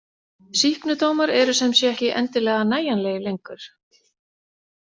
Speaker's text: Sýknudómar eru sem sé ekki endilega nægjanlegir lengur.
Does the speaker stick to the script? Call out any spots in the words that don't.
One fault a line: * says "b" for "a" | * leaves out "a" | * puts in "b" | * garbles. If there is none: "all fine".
all fine